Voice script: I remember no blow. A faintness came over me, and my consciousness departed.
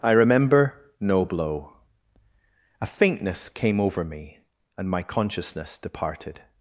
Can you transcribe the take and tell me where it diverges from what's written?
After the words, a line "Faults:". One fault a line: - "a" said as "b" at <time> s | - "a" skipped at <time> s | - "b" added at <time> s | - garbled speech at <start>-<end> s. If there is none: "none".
I remember no blow. A faintness came over me, and my consciousness departed.
Faults:
none